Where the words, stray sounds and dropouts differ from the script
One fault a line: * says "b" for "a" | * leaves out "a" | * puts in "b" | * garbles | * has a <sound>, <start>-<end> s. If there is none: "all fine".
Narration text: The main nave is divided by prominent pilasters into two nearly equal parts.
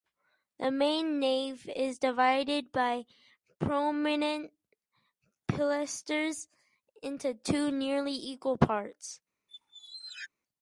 * has a squeak, 9.5-10.3 s